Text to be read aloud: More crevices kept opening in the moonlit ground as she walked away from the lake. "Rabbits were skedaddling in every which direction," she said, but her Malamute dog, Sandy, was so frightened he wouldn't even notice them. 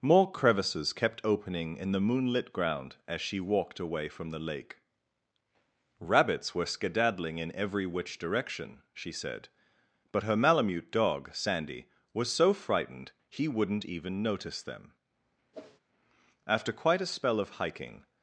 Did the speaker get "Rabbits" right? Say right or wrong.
right